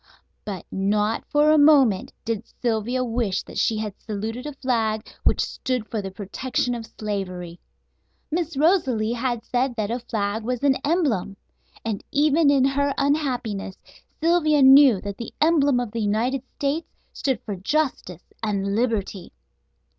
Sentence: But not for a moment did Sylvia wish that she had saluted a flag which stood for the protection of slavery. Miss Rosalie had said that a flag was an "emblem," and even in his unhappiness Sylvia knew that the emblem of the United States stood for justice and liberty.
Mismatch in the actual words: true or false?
true